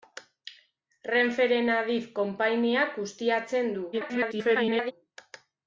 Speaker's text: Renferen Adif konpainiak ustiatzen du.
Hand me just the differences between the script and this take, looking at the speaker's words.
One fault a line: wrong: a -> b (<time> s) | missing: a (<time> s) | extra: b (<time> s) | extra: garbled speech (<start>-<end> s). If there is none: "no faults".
extra: garbled speech (3.9-4.9 s)